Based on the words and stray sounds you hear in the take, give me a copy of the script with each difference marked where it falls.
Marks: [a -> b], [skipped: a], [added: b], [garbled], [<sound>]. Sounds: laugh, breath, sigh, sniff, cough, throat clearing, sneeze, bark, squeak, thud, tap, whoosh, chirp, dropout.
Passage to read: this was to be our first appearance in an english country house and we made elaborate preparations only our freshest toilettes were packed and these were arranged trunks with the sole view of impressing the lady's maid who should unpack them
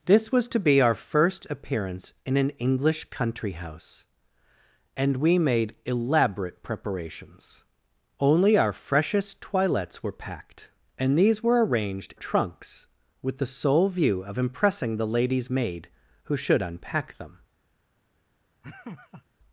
this was to be our first appearance in an english country house and we made elaborate preparations only our freshest toilettes were packed and these were arranged trunks with the sole view of impressing the lady's maid who should unpack them [laugh]